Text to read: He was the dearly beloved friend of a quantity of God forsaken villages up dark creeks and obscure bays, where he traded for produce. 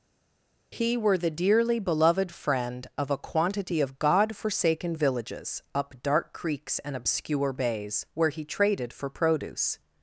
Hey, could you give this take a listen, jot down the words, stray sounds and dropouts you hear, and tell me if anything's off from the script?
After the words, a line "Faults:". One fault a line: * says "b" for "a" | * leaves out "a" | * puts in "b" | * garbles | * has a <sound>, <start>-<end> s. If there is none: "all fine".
He were the dearly beloved friend of a quantity of God forsaken villages up dark creeks and obscure bays, where he traded for produce.
Faults:
* says "were" for "was"